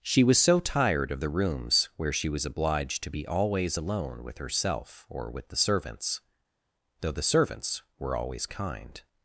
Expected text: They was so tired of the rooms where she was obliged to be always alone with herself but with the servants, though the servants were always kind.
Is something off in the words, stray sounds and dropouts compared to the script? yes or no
yes